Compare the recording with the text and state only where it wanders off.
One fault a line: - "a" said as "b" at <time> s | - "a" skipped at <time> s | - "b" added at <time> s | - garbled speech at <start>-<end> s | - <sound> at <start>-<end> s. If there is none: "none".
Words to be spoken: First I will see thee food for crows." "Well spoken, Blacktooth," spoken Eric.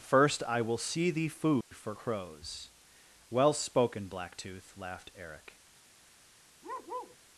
- dropout at 1.6-1.7 s
- "spoken" said as "laughed" at 4.8 s
- bark at 6.6-7.2 s